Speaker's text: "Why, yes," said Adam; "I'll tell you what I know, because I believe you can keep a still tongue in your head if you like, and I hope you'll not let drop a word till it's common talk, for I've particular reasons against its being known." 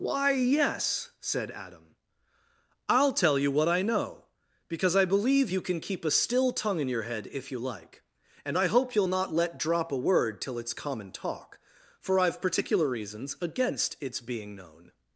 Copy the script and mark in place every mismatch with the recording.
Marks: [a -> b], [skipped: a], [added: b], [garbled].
"Why, yes," said Adam; "I'll tell you what I know, because I believe you can keep a still tongue in your head if you like, and I hope you'll not let drop a word till it's common talk, for I've particular reasons against its being known."